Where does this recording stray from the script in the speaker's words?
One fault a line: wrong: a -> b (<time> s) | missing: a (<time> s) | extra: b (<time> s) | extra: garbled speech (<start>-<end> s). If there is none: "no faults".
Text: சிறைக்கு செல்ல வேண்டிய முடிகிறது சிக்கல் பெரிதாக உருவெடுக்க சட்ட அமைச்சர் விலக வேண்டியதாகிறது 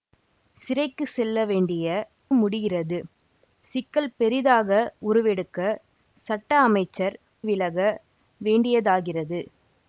no faults